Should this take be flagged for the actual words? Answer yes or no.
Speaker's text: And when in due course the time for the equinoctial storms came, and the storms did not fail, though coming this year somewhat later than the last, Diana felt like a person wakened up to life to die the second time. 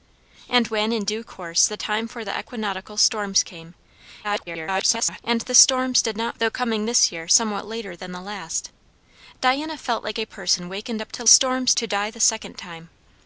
yes